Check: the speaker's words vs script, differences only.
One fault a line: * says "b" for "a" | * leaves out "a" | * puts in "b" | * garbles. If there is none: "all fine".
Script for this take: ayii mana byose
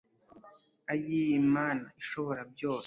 * puts in "ishobora"